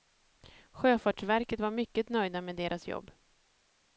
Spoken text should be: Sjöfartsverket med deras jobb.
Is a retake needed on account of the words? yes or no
yes